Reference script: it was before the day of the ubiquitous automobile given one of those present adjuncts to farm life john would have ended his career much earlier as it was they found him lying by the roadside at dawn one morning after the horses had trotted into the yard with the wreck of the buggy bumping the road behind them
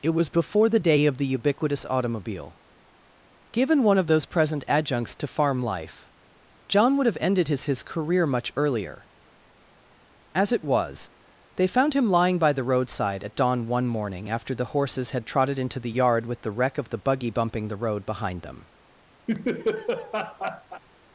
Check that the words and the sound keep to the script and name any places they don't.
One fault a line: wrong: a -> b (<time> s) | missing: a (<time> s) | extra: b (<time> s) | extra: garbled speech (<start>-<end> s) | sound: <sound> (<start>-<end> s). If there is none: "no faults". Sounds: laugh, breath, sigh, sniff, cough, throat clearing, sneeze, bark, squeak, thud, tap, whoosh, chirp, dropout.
extra: his (7.6 s)
sound: laugh (19.3-20.8 s)